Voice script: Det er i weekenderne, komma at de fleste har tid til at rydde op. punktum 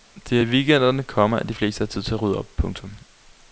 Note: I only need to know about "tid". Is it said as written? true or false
true